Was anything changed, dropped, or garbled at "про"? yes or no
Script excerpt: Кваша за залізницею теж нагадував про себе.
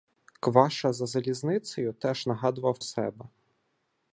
yes